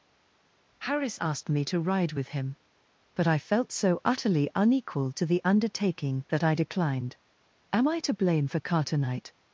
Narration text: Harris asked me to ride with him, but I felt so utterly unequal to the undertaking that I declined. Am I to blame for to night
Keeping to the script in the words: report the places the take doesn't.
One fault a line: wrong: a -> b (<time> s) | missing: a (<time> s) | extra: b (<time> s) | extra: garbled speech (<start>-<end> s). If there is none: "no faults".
wrong: to night -> carter knight (8.6 s)